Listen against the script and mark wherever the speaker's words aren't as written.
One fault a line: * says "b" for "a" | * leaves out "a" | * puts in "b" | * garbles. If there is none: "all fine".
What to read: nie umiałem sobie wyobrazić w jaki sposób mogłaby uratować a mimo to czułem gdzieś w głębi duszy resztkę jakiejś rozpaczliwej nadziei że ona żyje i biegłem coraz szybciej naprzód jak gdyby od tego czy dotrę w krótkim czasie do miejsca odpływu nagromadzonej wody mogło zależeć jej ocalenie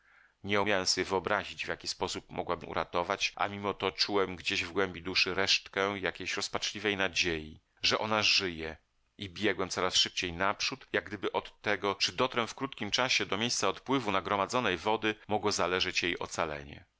all fine